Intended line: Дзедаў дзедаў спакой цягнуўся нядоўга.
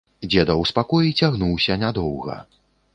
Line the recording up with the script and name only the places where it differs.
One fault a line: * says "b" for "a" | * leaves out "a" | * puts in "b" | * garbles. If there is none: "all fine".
* leaves out "дзедаў"